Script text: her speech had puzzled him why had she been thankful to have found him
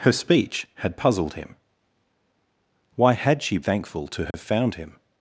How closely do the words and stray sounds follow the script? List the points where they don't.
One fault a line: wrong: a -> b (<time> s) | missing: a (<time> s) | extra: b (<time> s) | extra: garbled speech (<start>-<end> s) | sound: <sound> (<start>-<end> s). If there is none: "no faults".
missing: been (3.6 s)
sound: dropout (4.3-4.3 s)